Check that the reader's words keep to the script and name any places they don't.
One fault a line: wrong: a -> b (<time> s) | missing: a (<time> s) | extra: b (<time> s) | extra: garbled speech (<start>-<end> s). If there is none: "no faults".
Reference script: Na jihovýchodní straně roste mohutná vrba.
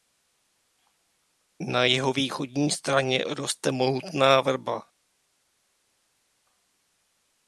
no faults